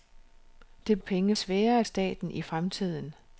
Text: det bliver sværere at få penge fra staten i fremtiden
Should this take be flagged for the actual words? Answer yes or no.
yes